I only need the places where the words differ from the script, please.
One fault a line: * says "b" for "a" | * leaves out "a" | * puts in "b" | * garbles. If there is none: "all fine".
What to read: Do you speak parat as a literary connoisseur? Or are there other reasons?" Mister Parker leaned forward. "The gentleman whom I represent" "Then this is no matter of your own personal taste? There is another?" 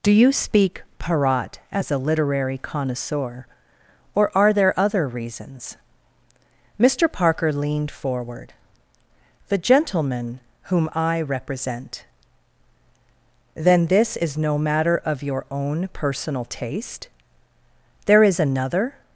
all fine